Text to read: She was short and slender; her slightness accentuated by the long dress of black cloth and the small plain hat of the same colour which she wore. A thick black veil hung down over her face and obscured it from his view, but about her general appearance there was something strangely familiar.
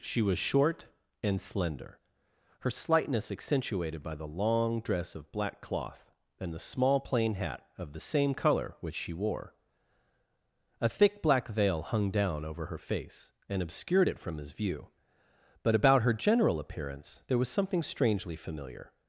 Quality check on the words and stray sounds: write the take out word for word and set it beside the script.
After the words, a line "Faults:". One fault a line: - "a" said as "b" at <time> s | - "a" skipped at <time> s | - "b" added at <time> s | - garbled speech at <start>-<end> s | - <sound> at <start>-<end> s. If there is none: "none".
She was short and slender; her slightness accentuated by the long dress of black cloth and the small plain hat of the same colour which she wore. A thick black veil hung down over her face and obscured it from his view, but about her general appearance there was something strangely familiar.
Faults:
none